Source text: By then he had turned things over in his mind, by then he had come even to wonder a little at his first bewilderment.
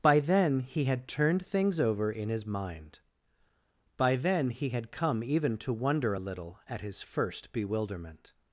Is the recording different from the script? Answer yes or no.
no